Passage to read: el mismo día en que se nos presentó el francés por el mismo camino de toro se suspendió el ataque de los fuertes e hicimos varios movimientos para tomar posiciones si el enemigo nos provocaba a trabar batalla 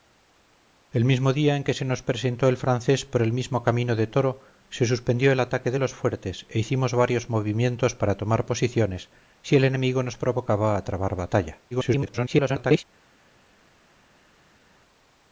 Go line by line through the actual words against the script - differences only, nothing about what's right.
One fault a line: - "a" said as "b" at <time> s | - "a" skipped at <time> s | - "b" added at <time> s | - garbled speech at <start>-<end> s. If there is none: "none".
- garbled speech at 11.7-12.9 s